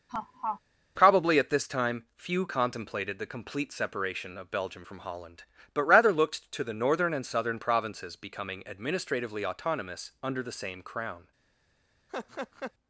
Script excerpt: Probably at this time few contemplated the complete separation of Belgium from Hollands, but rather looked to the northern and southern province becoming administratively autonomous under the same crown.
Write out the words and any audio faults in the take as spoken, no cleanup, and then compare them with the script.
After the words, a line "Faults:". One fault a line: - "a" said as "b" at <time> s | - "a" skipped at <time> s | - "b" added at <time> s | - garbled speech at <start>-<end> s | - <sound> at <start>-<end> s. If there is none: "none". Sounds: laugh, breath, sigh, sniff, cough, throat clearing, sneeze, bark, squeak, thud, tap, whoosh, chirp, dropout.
Probably at this time few contemplated the complete separation of Belgium from Holland, but rather looked to the northern and southern provinces becoming administratively autonomous under the same crown.
Faults:
- laugh at 0.1-0.6 s
- "Hollands" said as "Holland" at 5.0 s
- "province" said as "provinces" at 7.6 s
- laugh at 12.1-12.7 s